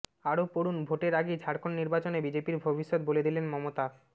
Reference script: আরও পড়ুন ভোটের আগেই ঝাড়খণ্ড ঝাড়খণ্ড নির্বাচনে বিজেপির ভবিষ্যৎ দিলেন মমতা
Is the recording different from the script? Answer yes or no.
yes